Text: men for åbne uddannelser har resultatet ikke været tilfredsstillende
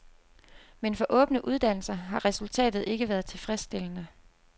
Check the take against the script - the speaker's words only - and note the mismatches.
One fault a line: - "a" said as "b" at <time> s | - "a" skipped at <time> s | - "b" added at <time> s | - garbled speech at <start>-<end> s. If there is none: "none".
none